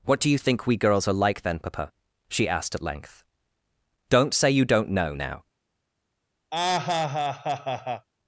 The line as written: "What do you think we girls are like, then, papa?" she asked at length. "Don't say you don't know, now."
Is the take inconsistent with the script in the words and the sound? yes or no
yes